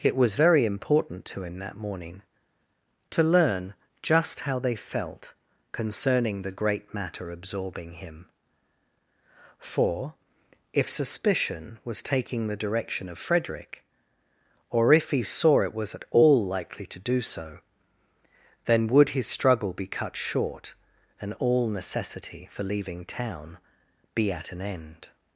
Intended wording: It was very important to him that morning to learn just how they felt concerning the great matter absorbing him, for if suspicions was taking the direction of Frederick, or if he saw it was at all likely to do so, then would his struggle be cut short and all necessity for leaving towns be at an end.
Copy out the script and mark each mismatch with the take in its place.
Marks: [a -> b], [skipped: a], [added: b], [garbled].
It was very important to him that morning to learn just how they felt concerning the great matter absorbing him, for if [suspicions -> suspicion] was taking the direction of Frederick, or if he saw it was at all likely to do so, then would his struggle be cut short and all necessity for leaving [towns -> town] be at an end.